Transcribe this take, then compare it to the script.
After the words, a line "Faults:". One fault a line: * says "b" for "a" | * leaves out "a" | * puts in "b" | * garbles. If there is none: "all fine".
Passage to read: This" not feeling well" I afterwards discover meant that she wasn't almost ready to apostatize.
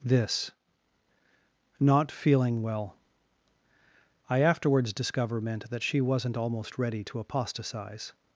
This" not feeling well" I afterwards discover meant that she wasn't almost ready to apostatize.
Faults:
all fine